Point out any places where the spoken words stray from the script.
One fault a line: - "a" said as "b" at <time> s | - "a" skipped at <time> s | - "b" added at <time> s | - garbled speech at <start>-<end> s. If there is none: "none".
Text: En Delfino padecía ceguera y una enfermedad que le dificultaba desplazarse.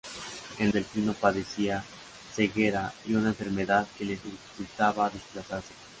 none